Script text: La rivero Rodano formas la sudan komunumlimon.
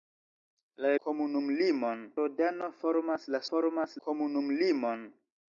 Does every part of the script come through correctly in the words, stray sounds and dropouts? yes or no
no